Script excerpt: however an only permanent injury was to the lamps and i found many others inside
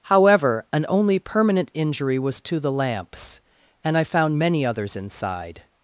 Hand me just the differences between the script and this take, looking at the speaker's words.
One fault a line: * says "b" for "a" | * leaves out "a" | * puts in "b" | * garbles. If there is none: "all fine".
all fine